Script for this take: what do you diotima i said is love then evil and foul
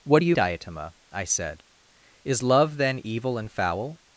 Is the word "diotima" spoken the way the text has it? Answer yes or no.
yes